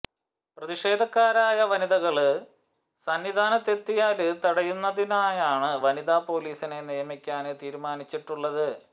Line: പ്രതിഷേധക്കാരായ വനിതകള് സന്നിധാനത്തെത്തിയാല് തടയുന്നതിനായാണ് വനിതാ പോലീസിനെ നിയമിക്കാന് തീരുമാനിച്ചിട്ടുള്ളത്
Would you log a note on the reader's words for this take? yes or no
no